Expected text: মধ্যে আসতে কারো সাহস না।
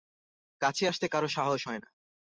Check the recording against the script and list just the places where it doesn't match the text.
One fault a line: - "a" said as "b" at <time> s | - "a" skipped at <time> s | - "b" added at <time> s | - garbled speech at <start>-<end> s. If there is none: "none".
- "মধ্যে" said as "কাছে" at 0.6 s
- "হয়" added at 1.7 s